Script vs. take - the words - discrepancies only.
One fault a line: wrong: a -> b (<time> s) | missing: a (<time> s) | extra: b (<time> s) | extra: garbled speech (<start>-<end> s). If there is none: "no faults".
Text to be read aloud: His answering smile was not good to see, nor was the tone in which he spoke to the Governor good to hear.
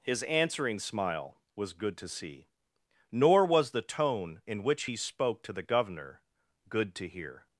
missing: not (1.7 s)